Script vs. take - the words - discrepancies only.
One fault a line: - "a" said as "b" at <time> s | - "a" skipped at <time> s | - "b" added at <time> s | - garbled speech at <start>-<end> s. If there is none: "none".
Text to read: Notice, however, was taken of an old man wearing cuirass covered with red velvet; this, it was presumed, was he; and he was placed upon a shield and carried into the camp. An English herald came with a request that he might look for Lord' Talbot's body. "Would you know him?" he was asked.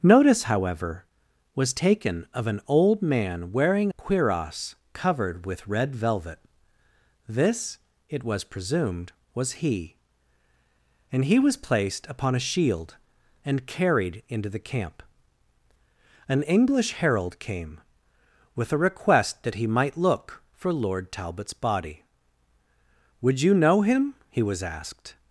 none